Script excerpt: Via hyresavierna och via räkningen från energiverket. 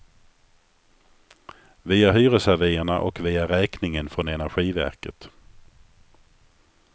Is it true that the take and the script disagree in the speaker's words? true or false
false